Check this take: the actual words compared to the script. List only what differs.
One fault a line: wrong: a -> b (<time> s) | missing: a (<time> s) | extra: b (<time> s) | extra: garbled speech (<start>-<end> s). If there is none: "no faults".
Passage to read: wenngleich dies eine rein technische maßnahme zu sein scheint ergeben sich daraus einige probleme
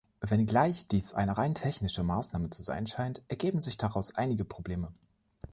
no faults